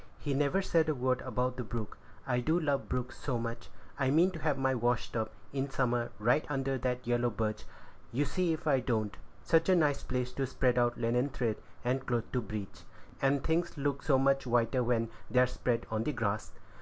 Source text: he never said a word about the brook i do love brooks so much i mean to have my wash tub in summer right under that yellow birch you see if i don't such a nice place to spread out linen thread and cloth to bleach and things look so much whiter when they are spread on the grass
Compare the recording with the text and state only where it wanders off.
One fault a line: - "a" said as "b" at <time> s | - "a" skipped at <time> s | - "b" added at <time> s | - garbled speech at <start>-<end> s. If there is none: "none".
none